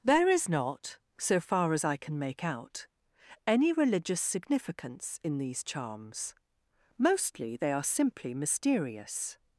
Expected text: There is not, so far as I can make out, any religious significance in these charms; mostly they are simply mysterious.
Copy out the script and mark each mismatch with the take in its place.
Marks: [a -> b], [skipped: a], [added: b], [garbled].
There is not, so far as I can make out, any religious significance in these charms; mostly they are simply mysterious.